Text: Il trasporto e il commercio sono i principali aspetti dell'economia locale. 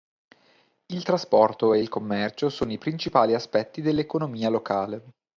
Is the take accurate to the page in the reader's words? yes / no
yes